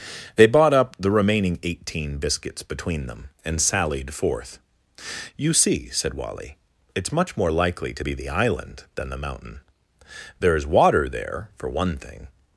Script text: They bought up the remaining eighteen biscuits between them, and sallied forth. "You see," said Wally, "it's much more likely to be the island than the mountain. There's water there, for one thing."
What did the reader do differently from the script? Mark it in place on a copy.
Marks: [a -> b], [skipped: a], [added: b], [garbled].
They bought up the remaining eighteen biscuits between them, and sallied forth. "You see," said Wally, "it's much more likely to be the island than the mountain. There's water there, for one thing."